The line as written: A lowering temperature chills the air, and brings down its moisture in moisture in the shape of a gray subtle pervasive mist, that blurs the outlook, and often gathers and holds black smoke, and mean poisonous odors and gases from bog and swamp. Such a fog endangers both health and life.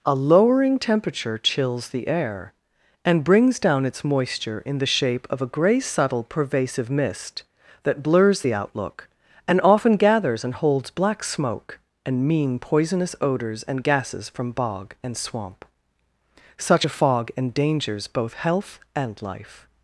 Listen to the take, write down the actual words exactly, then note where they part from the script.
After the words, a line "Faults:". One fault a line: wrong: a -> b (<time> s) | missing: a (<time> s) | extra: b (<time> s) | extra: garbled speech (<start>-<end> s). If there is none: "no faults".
A lowering temperature chills the air, and brings down its moisture in the shape of a gray subtle pervasive mist, that blurs the outlook, and often gathers and holds black smoke, and mean poisonous odors and gases from bog and swamp. Such a fog endangers both health and life.
Faults:
missing: moisture in (4.8 s)